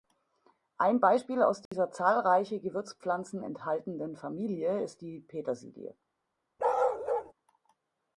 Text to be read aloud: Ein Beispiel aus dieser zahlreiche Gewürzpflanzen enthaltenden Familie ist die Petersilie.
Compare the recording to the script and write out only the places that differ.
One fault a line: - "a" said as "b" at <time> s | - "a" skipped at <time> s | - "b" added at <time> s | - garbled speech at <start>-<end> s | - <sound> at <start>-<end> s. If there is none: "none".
- dropout at 1.7-1.7 s
- bark at 6.6-7.3 s